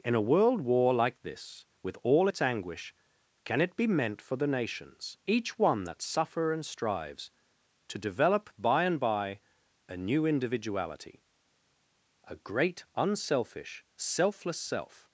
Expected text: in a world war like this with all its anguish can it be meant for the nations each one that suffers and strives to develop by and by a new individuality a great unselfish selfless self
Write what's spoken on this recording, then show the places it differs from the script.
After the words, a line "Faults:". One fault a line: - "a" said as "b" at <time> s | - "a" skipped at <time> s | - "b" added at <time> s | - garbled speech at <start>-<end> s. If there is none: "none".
in a world war like this with all its anguish can it be meant for the nations each one that suffer and strives to develop by and by a new individuality a great unselfish selfless self
Faults:
- "suffers" said as "suffer" at 6.0 s